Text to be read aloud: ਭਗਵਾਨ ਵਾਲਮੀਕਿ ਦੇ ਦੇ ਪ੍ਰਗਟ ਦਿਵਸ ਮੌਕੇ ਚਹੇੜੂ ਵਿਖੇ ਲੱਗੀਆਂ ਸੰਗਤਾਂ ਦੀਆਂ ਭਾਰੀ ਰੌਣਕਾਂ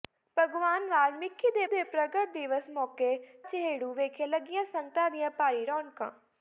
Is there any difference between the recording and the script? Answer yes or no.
no